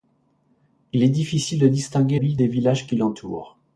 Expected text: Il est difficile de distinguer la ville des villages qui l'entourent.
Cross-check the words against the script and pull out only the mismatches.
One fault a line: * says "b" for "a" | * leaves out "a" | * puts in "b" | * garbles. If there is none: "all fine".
* leaves out "la"